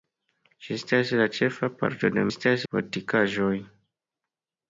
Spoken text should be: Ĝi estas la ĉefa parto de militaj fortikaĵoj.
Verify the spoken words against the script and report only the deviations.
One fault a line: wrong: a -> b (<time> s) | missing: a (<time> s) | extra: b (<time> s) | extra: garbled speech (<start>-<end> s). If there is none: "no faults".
wrong: militaj -> estas (2.3 s)